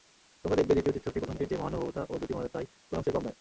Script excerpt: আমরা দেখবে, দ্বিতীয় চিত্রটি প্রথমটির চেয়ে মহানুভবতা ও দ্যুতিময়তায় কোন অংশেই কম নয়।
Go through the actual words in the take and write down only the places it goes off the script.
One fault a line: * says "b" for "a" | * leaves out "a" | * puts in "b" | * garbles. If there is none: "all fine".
* says "তোমরা" for "আমরা"